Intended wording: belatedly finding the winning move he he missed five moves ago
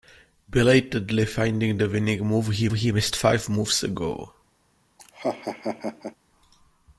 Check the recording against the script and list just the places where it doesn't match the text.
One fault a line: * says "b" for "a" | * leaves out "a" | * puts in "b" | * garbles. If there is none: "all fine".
all fine